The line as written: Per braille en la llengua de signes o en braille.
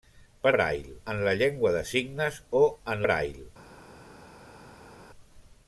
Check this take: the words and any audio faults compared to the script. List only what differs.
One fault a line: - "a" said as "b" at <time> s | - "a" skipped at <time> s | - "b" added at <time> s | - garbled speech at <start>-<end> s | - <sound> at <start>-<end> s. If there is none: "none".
none